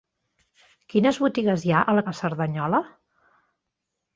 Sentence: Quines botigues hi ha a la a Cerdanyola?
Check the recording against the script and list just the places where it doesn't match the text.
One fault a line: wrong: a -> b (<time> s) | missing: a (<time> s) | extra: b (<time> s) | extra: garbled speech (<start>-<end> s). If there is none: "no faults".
no faults